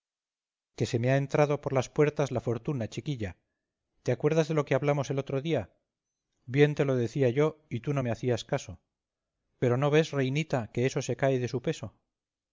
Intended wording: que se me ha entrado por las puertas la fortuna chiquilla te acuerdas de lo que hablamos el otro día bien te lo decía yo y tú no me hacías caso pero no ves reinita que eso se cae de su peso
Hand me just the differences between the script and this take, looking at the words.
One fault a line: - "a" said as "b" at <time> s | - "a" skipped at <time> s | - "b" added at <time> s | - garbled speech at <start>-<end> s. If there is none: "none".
none